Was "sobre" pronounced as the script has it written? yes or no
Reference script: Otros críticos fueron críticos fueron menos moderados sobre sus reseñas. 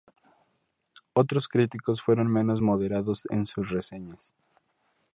no